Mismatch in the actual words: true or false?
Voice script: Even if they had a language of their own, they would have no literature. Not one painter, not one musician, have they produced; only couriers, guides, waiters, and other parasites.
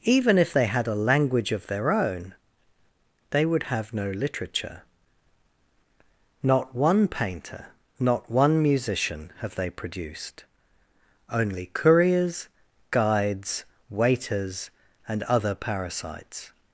false